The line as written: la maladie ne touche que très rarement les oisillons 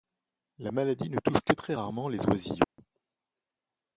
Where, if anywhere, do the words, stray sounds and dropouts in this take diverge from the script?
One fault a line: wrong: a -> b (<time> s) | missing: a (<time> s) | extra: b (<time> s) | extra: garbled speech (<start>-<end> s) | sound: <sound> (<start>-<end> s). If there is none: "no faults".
sound: dropout (2.6-2.8 s)